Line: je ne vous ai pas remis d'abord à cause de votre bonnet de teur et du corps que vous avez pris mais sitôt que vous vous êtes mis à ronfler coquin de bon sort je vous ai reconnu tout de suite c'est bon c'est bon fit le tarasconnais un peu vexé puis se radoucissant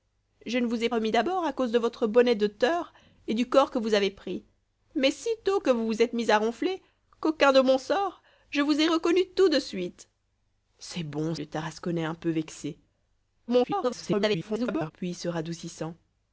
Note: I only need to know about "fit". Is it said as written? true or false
false